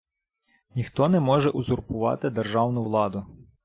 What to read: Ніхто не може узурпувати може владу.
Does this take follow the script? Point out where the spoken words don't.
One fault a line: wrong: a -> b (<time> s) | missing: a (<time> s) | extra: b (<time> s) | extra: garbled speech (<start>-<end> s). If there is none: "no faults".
wrong: може -> державну (2.3 s)